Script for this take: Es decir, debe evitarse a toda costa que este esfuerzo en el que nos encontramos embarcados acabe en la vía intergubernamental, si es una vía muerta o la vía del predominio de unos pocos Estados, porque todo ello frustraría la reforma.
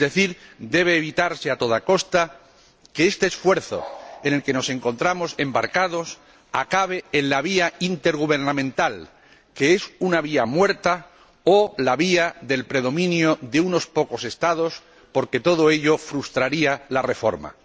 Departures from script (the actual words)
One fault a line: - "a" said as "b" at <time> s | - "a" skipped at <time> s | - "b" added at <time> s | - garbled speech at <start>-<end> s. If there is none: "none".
- "si" said as "que" at 9.5 s